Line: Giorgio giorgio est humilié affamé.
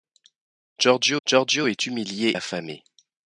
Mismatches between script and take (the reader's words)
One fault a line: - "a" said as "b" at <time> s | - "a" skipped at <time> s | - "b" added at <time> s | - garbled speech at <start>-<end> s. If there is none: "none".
none